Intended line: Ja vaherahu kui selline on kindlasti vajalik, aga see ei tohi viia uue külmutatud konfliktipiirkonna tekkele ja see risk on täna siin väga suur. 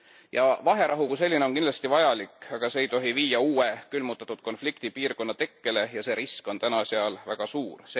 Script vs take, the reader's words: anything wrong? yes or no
yes